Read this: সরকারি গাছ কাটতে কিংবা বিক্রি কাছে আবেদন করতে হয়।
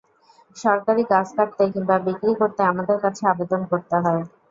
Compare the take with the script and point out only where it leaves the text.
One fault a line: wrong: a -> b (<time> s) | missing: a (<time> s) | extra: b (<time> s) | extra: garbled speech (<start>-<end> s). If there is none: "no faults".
extra: করতে আমাদের (2.4 s)